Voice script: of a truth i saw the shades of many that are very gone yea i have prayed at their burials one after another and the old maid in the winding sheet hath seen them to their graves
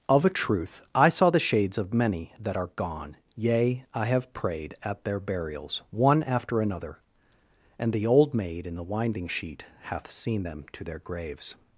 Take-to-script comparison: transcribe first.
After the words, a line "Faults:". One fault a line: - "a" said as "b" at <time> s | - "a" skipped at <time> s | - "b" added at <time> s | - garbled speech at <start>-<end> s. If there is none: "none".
of a truth i saw the shades of many that are gone yea i have prayed at their burials one after another and the old maid in the winding sheet hath seen them to their graves
Faults:
- "very" skipped at 2.7 s